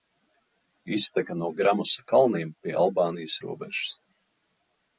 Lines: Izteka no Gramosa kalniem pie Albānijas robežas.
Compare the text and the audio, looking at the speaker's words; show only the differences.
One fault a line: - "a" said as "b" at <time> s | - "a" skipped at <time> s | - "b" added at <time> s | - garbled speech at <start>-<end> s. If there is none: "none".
none